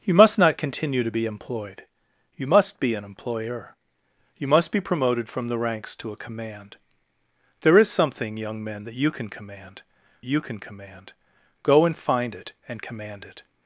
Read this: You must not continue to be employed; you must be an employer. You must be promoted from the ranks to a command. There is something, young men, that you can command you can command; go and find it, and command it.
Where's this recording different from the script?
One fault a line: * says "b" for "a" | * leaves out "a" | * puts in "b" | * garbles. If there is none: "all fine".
all fine